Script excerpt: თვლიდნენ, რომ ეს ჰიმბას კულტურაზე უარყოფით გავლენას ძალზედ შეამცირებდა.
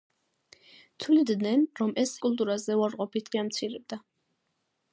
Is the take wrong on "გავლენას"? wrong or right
wrong